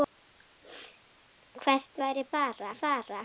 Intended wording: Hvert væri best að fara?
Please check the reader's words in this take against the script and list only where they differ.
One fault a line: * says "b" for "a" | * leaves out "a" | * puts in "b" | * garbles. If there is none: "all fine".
* says "fara" for "best"